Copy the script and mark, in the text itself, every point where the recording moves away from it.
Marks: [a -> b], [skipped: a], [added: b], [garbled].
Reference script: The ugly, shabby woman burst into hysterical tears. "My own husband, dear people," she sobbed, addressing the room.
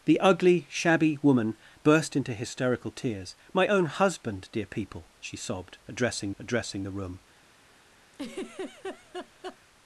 The ugly, shabby woman burst into hysterical tears. "My own husband, dear people," she sobbed, addressing [added: addressing] the room.